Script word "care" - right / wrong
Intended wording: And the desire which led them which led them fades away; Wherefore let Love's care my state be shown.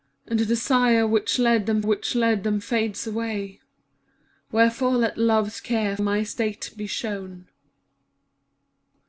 right